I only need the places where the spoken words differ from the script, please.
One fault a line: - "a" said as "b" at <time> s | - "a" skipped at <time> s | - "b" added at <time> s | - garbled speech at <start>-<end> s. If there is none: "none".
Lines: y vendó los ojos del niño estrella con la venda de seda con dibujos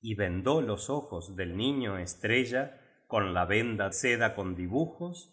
- "de" skipped at 3.9 s